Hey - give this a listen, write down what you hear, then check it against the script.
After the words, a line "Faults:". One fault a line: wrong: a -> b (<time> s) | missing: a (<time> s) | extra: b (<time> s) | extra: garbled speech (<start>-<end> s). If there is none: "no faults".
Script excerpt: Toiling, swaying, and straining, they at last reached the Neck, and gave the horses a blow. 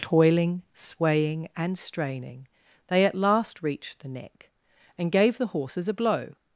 Toiling, swaying, and straining, they at last reached the Neck, and gave the horses a blow.
Faults:
no faults